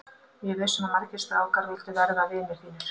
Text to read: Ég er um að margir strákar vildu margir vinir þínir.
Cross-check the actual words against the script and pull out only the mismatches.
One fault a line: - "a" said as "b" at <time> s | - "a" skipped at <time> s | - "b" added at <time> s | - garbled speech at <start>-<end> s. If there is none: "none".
- "viss" added at 0.6 s
- "margir" said as "verða" at 2.0 s